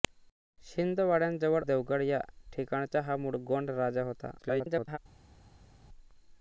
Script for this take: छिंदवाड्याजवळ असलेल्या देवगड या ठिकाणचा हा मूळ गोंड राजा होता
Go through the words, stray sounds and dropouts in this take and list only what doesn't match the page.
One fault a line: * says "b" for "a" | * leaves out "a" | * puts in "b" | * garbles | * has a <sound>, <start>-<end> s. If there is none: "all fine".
* leaves out "असलेल्या"
* garbles